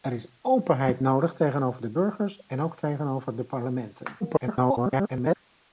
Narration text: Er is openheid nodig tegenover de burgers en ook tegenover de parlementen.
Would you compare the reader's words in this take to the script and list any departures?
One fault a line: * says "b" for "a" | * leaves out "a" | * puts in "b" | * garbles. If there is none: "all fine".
* garbles